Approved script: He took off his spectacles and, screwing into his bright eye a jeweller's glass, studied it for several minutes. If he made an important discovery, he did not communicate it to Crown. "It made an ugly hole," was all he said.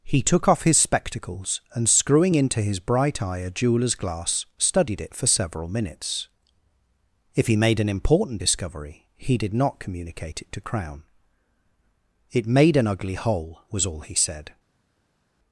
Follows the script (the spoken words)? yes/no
yes